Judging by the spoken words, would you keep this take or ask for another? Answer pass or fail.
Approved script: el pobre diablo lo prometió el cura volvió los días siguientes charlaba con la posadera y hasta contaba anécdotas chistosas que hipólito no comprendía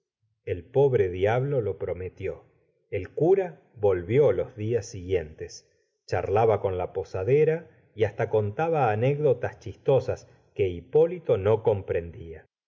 pass